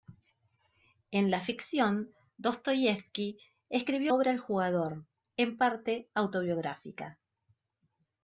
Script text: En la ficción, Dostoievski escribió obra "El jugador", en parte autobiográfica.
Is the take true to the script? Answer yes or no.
yes